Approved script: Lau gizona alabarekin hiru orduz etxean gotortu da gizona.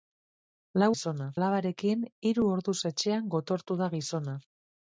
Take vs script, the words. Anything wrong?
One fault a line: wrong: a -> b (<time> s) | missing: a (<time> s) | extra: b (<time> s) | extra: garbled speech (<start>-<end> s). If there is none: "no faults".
no faults